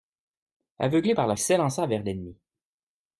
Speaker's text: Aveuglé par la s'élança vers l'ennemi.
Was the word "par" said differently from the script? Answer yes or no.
no